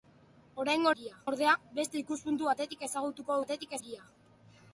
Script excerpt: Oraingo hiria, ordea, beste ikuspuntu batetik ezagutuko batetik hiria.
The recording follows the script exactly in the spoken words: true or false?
true